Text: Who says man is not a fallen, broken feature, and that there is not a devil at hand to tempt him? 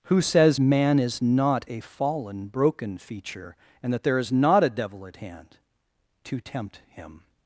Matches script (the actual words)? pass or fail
pass